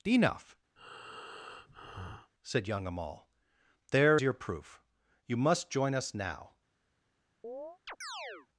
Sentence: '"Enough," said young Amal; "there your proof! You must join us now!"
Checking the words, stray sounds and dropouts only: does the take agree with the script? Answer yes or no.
no